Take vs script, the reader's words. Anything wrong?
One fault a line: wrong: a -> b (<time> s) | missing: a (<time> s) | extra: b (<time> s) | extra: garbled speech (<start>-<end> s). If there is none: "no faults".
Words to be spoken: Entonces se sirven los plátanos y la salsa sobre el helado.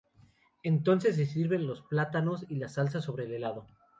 no faults